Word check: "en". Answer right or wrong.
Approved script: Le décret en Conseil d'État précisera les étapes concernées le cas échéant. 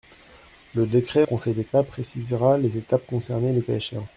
wrong